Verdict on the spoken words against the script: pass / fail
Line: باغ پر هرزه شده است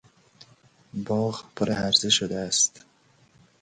pass